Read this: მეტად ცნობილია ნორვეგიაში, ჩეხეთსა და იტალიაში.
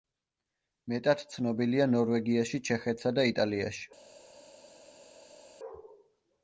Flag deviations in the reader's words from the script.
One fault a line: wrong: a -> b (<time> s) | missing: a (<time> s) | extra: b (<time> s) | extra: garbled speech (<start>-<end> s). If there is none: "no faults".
no faults